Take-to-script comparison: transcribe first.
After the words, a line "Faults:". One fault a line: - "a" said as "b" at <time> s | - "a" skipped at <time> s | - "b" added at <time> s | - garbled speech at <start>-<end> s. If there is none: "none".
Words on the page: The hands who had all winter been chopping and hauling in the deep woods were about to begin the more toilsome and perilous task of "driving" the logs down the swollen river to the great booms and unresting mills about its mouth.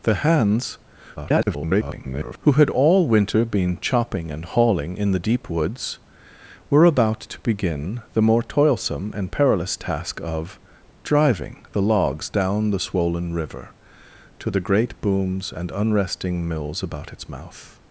The hands [garbled] who had all winter been chopping and hauling in the deep woods were about to begin the more toilsome and perilous task of "driving" the logs down the swollen river to the great booms and unresting mills about its mouth.
Faults:
- garbled speech at 1.2-2.4 s